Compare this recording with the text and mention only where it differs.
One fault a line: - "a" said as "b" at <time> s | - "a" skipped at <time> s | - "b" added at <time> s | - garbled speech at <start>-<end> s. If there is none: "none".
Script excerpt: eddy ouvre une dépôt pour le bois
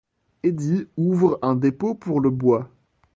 - "une" said as "un" at 1.4 s